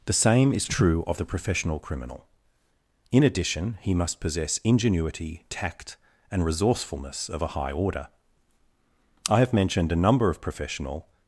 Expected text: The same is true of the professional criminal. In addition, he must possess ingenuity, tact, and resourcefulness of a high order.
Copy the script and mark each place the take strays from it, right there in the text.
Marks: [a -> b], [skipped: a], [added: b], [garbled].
The same is true of the professional criminal. In addition, he must possess ingenuity, tact, and resourcefulness of a high order. [added: I have mentioned a number of professional]